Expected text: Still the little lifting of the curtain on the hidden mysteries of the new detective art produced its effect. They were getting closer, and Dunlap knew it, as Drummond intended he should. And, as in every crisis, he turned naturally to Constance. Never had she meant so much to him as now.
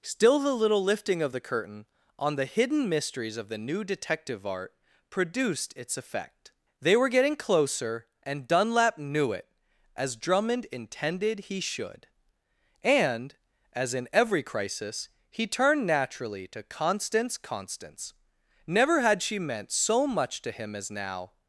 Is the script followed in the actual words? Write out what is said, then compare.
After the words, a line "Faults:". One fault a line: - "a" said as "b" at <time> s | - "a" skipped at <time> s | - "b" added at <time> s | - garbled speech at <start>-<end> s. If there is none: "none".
Still the little lifting of the curtain on the hidden mysteries of the new detective art produced its effect. They were getting closer, and Dunlap knew it, as Drummond intended he should. And, as in every crisis, he turned naturally to Constance Constance. Never had she meant so much to him as now.
Faults:
- "Constance" added at 17.4 s